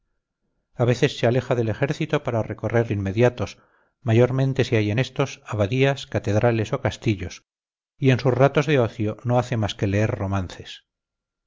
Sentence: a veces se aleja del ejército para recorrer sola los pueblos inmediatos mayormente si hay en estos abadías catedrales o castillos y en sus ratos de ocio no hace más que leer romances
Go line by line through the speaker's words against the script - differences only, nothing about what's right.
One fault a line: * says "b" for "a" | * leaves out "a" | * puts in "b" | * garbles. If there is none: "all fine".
* leaves out "sola los pueblos"